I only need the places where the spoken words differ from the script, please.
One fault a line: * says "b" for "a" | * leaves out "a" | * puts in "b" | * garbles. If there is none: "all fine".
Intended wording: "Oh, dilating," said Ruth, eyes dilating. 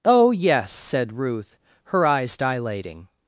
* says "yes" for "dilating"
* puts in "her"